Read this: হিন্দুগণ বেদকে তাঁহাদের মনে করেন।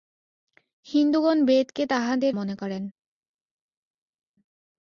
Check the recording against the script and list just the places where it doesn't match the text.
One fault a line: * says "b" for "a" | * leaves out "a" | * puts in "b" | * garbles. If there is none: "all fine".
all fine